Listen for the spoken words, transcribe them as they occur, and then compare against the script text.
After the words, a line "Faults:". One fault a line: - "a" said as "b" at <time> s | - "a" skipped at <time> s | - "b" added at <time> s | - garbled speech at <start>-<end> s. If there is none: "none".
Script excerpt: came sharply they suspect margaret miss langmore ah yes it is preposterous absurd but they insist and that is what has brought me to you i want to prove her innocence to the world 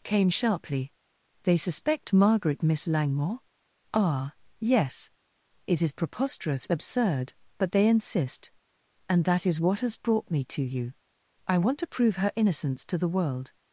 came sharply they suspect margaret miss langmore ah yes it is preposterous absurd but they insist and that is what has brought me to you i want to prove her innocence to the world
Faults:
none